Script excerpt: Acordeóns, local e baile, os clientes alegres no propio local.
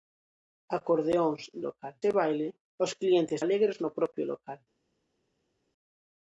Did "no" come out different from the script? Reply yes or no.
no